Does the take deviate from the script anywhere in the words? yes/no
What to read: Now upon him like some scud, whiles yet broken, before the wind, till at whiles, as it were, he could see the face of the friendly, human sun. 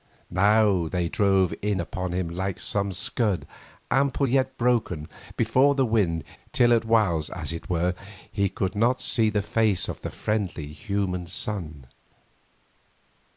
yes